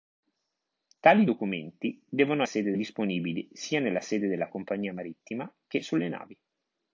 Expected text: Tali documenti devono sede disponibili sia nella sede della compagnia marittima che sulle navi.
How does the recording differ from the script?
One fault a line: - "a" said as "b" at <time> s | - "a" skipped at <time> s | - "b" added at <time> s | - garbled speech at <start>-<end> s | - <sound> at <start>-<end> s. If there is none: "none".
none